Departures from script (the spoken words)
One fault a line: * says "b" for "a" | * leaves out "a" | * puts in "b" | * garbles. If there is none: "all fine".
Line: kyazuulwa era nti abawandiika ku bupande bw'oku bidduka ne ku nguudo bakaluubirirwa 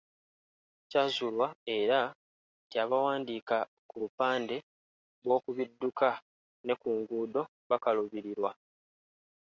all fine